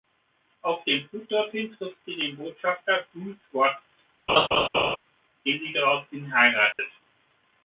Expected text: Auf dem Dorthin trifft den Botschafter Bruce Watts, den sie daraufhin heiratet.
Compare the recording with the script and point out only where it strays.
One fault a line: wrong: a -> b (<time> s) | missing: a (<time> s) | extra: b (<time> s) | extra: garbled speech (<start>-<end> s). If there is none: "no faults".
extra: Flug (1.1 s)
extra: sie (2.0 s)